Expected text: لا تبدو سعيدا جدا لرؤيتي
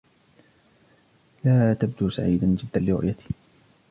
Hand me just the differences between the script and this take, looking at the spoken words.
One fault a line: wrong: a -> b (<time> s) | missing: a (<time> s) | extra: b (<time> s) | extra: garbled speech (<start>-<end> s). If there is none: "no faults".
no faults